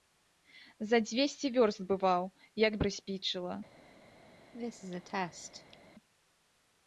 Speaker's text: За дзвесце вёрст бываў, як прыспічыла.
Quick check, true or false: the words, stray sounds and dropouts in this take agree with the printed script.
false